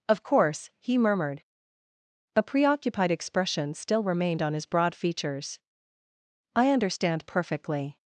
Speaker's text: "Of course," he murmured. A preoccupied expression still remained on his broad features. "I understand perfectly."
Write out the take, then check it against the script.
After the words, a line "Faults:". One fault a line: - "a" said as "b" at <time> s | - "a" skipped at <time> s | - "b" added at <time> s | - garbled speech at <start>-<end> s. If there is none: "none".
"Of course," he murmured. A preoccupied expression still remained on his broad features. "I understand perfectly."
Faults:
none